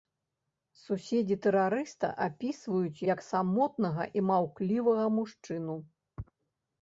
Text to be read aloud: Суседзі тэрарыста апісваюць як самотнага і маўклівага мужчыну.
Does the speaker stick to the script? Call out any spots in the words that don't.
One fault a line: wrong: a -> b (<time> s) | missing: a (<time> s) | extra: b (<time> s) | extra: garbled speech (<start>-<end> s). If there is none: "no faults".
no faults